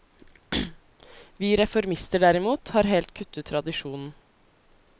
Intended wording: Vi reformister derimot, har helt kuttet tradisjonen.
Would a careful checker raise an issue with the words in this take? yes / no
no